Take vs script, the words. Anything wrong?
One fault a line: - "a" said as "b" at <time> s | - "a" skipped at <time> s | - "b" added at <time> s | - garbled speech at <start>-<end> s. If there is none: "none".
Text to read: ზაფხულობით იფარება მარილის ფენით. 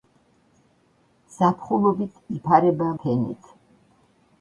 - "მარილის" skipped at 2.9 s